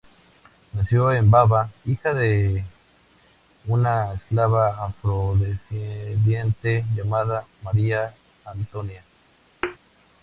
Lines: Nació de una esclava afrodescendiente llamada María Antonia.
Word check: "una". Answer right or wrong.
right